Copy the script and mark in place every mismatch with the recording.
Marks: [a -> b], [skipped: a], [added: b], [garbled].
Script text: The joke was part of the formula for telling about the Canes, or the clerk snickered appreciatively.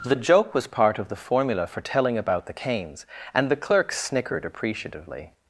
The joke was part of the formula for telling about the Canes, [or -> and] the clerk snickered appreciatively.